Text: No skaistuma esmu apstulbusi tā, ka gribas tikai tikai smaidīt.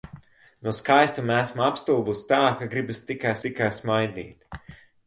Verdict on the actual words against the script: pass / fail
pass